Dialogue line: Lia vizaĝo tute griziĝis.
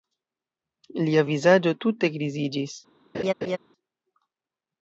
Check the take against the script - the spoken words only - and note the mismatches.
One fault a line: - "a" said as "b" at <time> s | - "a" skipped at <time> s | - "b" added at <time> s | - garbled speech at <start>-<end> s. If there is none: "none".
none